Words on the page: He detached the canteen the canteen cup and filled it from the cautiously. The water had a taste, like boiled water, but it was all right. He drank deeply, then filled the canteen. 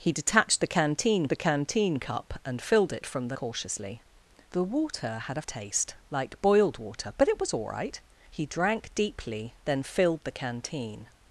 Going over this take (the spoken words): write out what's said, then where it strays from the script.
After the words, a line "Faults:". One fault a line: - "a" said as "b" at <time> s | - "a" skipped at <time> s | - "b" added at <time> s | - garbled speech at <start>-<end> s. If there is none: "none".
He detached the canteen the canteen cup and filled it from the cautiously. The water had a taste, like boiled water, but it was all right. He drank deeply, then filled the canteen.
Faults:
none